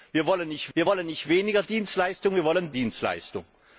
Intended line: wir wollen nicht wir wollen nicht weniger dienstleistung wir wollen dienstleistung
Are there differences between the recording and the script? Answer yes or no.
no